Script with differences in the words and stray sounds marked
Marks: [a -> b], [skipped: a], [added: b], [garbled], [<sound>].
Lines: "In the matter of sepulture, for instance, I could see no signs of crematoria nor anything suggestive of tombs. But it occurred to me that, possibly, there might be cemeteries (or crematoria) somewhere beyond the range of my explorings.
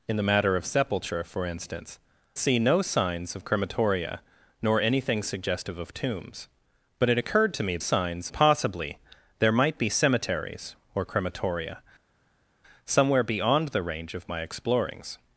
"In the matter of sepulture, for instance, [skipped: I could] see no signs of crematoria nor anything suggestive of tombs. But it occurred to me [that, -> signs] possibly, there might be cemeteries (or crematoria) somewhere beyond the range of my explorings.